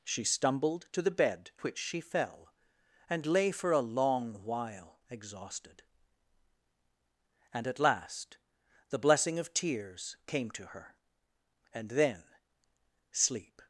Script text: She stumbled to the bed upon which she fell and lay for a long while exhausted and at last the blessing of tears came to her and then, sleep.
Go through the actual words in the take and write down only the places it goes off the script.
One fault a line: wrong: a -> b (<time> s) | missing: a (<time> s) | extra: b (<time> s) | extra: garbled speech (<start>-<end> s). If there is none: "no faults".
missing: upon (1.5 s)